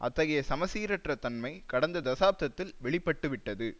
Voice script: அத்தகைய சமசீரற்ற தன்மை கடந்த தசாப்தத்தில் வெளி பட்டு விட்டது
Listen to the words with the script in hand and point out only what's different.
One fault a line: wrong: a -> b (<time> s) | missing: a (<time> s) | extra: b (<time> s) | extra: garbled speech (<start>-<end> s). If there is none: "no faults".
no faults